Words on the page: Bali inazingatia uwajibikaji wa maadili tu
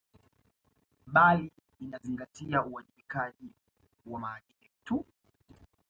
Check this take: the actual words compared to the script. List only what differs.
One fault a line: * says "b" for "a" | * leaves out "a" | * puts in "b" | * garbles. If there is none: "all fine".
all fine